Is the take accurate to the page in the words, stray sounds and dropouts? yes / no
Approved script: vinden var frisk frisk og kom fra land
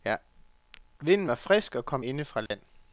no